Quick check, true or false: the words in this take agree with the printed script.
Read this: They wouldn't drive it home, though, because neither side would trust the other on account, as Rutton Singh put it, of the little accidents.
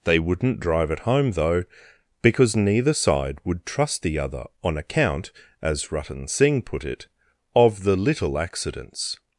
true